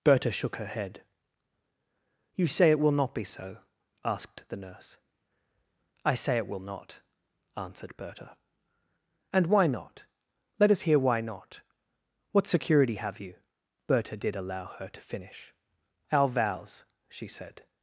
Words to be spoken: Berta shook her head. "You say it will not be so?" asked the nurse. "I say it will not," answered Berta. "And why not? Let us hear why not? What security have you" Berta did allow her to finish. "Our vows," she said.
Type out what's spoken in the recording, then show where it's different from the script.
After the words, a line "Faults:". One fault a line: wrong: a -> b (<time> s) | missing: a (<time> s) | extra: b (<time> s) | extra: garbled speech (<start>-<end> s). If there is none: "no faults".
Berta shook her head. "You say it will not be so?" asked the nurse. "I say it will not," answered Berta. "And why not? Let us hear why not? What security have you" Berta did allow her to finish. "Our vows," she said.
Faults:
no faults